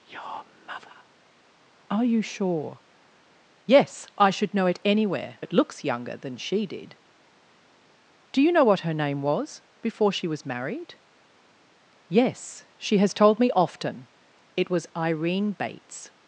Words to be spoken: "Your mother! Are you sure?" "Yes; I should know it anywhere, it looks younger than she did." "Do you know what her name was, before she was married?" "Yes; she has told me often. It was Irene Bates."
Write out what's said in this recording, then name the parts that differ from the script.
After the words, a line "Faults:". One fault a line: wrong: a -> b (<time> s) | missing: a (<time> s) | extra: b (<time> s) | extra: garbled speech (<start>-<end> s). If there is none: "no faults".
"Your mother! Are you sure?" "Yes; I should know it anywhere, it looks younger than she did." "Do you know what her name was, before she was married?" "Yes; she has told me often. It was Irene Bates."
Faults:
no faults